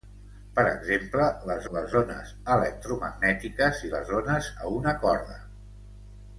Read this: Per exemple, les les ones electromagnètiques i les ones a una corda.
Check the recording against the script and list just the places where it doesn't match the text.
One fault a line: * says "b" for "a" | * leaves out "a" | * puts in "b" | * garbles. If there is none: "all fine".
all fine